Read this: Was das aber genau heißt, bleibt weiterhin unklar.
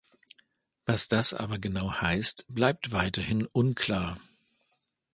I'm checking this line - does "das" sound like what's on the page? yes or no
yes